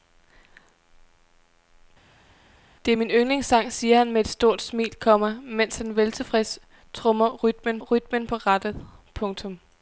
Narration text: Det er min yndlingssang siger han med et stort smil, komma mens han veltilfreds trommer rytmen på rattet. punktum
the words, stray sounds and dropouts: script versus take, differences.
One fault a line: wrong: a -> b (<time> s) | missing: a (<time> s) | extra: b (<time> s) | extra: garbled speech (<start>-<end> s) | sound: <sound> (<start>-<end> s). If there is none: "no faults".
extra: rytmen (7.8 s)